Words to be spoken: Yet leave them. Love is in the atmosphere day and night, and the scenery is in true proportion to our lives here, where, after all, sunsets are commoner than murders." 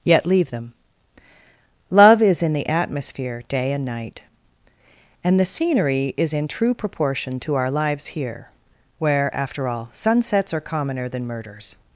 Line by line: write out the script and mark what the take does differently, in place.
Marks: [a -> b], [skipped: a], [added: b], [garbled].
Yet leave them. Love is in the atmosphere day and night, and the scenery is in true proportion to our lives here, where, after all, sunsets are commoner than murders."